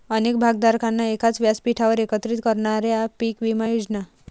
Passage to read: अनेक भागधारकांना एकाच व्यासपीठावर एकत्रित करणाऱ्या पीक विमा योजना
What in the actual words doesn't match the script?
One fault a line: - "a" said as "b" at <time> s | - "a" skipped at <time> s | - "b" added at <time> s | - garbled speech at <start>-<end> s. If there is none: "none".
none